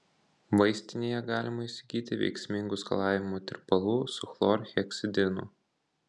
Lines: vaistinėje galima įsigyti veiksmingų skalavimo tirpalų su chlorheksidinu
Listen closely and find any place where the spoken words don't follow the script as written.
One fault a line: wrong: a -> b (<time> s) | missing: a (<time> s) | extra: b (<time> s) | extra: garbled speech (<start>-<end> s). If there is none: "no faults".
no faults